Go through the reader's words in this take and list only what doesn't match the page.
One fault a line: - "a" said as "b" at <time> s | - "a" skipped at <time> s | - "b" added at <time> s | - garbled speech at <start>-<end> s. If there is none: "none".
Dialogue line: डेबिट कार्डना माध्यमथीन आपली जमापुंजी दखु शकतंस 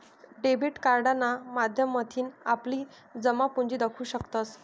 none